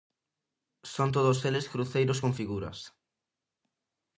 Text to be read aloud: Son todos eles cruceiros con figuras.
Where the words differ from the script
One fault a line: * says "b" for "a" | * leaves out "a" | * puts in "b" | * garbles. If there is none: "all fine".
all fine